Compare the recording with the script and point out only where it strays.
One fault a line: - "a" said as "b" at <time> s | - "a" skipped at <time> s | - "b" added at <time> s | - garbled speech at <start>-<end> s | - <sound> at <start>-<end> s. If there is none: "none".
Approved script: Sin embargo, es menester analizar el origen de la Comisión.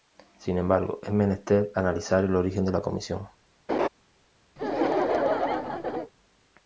- laugh at 3.7-3.9 s
- laugh at 4.6-6.1 s